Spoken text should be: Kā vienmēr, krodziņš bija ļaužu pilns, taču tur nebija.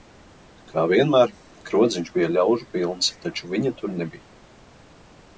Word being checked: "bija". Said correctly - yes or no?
yes